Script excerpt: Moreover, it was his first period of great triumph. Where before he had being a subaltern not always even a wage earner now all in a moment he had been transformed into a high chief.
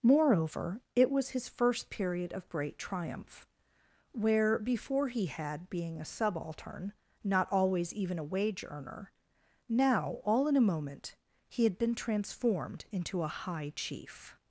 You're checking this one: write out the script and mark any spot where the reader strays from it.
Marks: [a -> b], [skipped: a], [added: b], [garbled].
Moreover, it was his first period of great triumph. Where before he had being a subaltern not always even a wage earner now all in a moment he had been transformed into a high chief.